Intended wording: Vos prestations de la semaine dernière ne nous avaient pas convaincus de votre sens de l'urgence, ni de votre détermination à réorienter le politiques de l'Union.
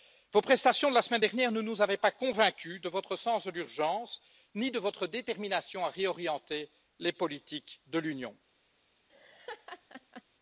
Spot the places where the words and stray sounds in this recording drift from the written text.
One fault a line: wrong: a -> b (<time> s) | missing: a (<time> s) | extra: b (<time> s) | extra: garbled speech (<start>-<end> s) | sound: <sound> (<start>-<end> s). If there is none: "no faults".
wrong: le -> les (7.0 s)
sound: laugh (9.1-10.2 s)